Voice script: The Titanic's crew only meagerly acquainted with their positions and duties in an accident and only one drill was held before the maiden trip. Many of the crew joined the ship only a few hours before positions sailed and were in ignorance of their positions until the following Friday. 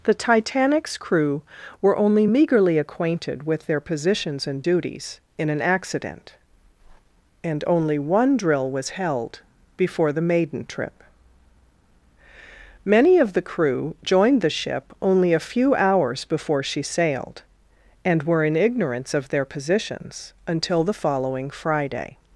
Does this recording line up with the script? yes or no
no